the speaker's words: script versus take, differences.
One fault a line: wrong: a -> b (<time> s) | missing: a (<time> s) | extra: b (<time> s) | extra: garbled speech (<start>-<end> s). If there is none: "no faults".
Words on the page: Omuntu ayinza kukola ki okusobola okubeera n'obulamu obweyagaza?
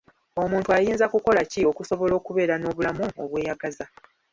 no faults